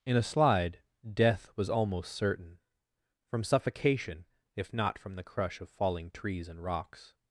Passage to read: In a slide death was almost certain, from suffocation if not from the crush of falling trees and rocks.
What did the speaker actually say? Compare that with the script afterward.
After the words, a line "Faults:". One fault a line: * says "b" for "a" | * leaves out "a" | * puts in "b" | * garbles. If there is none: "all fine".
In a slide death was almost certain, from suffocation if not from the crush of falling trees and rocks.
Faults:
all fine